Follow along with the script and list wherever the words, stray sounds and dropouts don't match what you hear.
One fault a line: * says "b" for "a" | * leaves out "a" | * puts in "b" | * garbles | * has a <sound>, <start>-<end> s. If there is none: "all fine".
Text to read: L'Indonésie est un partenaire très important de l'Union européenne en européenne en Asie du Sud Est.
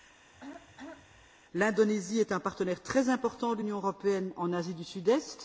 * has a throat clearing, 0.3-1.3 s
* leaves out "européenne en"